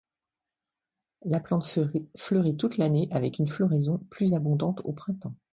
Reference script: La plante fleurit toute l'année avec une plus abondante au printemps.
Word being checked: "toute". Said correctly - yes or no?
yes